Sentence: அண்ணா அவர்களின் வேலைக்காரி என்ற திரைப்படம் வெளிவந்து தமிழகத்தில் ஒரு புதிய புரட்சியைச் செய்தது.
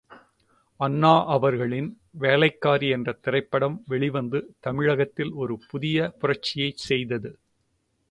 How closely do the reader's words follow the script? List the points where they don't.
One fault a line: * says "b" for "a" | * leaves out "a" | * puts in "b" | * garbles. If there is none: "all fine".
all fine